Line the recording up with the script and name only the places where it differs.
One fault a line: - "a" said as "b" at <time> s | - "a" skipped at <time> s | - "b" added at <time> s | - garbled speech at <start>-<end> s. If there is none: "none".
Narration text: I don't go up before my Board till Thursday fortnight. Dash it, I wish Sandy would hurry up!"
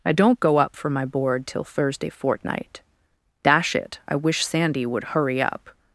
- "before" said as "for" at 0.8 s